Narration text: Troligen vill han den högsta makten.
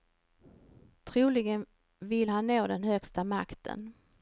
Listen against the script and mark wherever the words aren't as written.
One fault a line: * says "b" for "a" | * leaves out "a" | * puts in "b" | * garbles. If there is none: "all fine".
* puts in "nå"